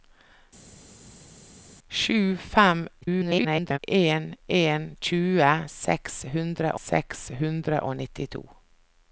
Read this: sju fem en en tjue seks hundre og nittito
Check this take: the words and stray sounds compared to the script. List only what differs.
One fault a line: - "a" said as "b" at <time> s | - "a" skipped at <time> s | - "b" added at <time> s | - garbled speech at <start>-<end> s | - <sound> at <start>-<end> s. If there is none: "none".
- garbled speech at 3.0-3.8 s
- "seks hundre" added at 6.8 s